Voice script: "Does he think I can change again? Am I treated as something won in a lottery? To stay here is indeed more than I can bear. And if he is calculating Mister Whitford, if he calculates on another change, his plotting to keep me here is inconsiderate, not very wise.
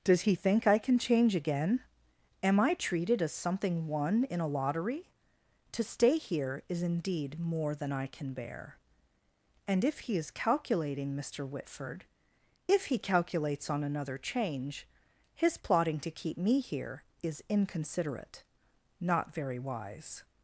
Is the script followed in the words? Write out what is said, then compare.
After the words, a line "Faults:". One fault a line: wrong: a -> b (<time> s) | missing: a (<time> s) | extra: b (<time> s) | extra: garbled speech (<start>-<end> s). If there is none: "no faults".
"Does he think I can change again? Am I treated as something won in a lottery? To stay here is indeed more than I can bear. And if he is calculating Mister Whitford, if he calculates on another change, his plotting to keep me here is inconsiderate, not very wise.
Faults:
no faults